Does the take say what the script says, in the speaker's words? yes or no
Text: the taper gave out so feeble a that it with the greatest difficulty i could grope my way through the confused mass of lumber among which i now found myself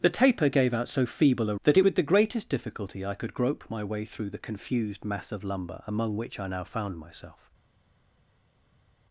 yes